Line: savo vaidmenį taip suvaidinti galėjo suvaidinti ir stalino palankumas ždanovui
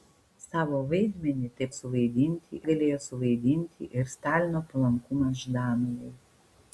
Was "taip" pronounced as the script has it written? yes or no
yes